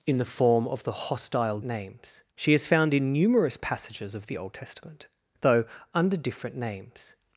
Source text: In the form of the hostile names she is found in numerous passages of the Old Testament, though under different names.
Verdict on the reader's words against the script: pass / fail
pass